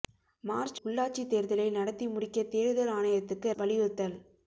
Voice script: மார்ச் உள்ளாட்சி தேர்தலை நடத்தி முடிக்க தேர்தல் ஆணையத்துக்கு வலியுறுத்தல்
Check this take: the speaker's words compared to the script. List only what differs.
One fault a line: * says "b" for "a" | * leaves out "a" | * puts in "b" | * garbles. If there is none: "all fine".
all fine